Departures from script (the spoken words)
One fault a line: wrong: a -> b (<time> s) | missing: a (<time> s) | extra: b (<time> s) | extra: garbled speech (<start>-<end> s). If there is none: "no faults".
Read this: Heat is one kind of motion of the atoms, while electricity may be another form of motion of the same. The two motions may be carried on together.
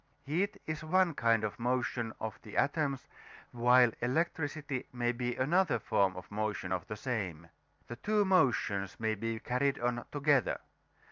no faults